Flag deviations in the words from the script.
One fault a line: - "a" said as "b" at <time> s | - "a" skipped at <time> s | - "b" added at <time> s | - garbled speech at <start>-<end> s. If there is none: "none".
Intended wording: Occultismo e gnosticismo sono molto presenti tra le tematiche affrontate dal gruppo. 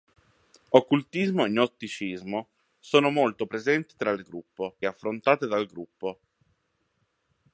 - "tematiche" said as "gruppo" at 4.2 s